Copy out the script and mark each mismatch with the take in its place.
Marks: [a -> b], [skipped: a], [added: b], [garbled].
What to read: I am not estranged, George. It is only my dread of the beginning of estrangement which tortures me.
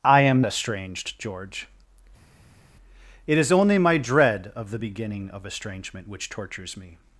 I am [skipped: not] estranged, George. It is only my dread of the beginning of estrangement which tortures me.